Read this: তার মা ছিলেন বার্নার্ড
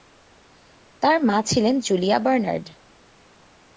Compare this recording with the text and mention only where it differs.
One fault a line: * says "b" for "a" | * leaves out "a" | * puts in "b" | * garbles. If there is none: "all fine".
* puts in "জুলিয়া"